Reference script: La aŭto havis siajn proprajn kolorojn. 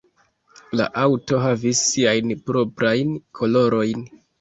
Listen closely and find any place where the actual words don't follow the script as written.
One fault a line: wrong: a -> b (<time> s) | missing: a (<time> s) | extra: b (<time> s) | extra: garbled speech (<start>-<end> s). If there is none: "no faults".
no faults